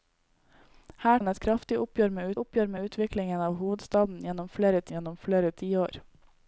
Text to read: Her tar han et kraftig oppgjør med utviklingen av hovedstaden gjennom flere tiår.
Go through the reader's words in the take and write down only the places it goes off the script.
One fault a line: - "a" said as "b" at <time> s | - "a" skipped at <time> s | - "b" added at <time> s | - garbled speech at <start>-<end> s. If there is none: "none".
- "tar" skipped at 1.2 s
- "oppgjør med" added at 2.4 s
- "gjennom flere" added at 5.0 s